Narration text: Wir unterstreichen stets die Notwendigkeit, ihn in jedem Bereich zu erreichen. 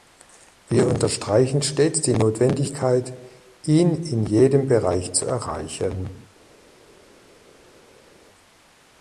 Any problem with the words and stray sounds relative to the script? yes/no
no